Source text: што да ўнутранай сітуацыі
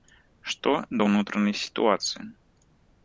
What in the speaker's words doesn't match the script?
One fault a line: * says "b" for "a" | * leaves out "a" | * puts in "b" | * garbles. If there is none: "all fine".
all fine